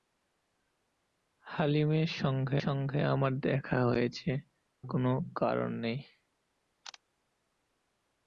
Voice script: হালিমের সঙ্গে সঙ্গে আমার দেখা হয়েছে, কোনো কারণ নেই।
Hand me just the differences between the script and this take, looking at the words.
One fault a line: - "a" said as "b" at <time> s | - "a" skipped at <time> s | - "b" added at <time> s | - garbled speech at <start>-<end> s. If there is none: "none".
none